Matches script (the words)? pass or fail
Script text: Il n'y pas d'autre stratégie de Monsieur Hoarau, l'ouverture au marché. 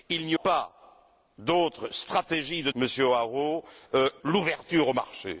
pass